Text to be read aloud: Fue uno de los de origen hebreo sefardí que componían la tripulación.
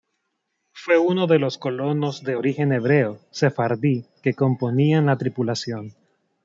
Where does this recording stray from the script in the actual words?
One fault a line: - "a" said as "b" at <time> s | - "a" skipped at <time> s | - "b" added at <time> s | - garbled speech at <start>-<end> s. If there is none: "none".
- "colonos" added at 1.6 s